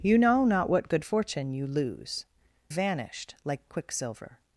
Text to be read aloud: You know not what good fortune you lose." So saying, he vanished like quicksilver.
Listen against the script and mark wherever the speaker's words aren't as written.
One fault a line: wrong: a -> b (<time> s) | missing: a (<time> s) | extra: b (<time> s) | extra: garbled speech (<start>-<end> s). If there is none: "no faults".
missing: So saying he (2.2 s)